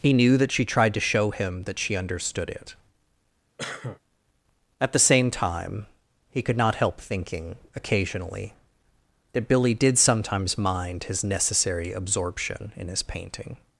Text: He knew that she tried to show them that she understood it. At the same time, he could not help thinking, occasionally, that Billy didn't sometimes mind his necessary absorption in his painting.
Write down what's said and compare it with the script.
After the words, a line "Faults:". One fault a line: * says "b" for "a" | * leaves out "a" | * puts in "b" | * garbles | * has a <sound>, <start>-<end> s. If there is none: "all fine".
He knew that she tried to show him that she understood it. At the same time, he could not help thinking, occasionally, that Billy did sometimes mind his necessary absorption in his painting.
Faults:
* says "him" for "them"
* has a cough, 3.6-4.0 s
* says "did" for "didn't"